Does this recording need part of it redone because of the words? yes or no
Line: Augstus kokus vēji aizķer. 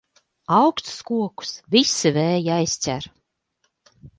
yes